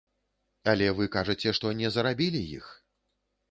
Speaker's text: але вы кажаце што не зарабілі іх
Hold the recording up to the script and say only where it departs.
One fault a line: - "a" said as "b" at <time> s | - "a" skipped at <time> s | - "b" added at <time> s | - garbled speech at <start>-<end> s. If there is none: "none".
none